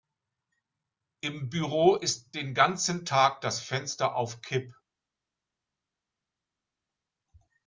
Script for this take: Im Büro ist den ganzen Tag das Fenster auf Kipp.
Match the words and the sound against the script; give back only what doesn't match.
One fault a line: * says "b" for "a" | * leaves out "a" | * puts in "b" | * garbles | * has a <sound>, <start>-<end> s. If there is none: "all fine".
all fine